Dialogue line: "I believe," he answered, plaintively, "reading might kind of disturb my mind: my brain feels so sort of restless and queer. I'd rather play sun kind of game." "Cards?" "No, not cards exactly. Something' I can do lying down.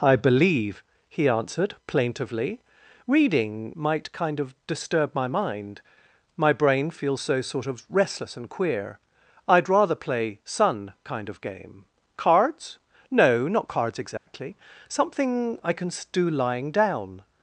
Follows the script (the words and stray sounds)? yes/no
no